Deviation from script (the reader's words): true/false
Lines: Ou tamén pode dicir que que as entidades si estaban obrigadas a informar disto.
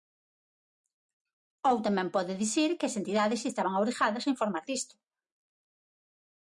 true